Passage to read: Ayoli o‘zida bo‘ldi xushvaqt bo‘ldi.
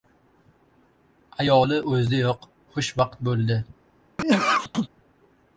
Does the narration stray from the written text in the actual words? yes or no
yes